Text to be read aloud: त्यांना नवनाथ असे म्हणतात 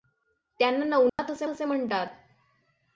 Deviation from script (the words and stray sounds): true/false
true